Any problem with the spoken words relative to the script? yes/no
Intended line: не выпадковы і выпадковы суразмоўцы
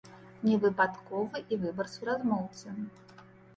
yes